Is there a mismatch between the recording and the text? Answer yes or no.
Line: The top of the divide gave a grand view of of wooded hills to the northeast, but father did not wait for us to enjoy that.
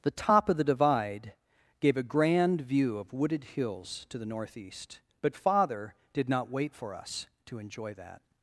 yes